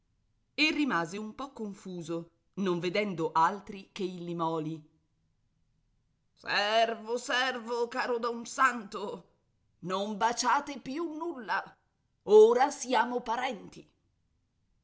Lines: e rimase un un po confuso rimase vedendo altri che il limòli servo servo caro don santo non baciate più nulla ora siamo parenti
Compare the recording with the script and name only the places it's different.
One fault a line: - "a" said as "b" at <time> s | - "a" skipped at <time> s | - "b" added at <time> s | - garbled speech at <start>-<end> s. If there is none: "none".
- "un" skipped at 1.3 s
- "rimase" said as "non" at 2.5 s